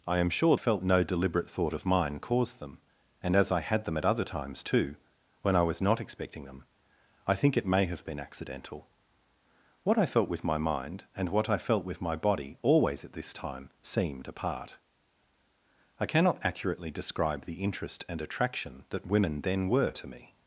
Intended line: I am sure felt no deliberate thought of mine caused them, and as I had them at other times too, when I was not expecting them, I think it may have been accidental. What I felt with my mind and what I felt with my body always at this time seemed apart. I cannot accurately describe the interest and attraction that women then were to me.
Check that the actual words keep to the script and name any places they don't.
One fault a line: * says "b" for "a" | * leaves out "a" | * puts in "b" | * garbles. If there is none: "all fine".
all fine